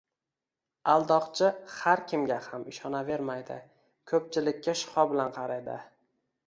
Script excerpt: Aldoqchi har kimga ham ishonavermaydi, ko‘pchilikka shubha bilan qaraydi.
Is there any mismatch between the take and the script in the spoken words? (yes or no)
no